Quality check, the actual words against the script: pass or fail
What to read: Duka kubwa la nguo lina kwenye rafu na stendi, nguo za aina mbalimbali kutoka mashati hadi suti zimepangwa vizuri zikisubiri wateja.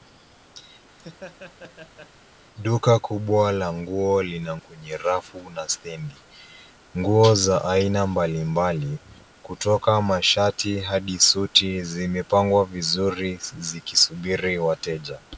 pass